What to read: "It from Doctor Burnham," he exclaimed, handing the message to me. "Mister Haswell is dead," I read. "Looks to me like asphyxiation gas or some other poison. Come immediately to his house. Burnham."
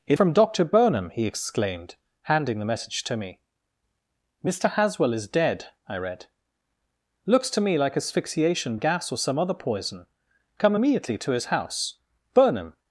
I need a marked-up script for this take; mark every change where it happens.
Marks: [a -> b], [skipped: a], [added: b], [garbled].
"It from Doctor Burnham," he exclaimed, handing the message to me. "Mister Haswell is dead," I read. "Looks to me like asphyxiation gas or some other poison. Come immediately to his house. Burnham."